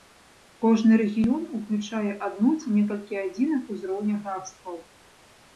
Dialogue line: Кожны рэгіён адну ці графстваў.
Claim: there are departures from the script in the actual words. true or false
true